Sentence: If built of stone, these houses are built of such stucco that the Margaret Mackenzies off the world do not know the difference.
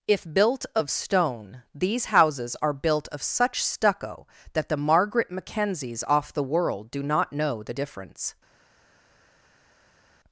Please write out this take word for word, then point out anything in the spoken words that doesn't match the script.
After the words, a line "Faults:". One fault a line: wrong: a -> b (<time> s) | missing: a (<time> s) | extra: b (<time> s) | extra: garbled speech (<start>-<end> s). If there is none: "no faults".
If built of stone, these houses are built of such stucco that the Margaret Mackenzies off the world do not know the difference.
Faults:
no faults